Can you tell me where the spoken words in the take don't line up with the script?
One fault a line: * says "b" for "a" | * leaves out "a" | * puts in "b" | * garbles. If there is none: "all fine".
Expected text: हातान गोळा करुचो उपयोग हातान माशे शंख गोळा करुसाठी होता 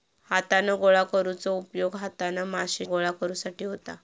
* leaves out "शंख"